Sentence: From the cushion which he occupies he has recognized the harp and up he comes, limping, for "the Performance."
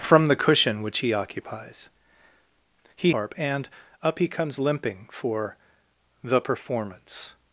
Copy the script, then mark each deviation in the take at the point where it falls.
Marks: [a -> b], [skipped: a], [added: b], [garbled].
From the cushion which he occupies he [skipped: has recognized the] harp and up he comes, limping, for "the Performance."